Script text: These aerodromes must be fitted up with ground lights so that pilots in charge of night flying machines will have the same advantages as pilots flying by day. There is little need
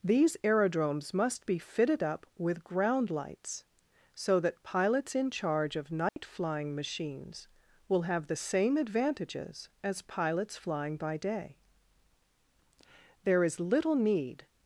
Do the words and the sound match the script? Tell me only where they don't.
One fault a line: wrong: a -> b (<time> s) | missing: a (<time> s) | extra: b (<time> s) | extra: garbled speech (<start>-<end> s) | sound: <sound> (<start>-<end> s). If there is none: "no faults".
sound: dropout (6.1-6.2 s)